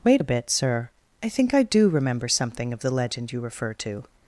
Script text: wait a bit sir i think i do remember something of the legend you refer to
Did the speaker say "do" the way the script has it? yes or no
yes